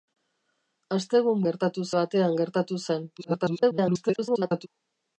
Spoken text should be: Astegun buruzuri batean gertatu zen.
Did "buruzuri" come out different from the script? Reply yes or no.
yes